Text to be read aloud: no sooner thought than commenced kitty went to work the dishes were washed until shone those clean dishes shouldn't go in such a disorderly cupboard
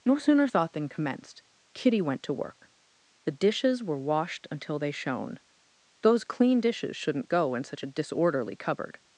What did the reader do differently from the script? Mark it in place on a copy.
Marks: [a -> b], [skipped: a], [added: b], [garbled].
no sooner thought than commenced kitty went to work the dishes were washed until [added: they] shone those clean dishes shouldn't go in such a disorderly cupboard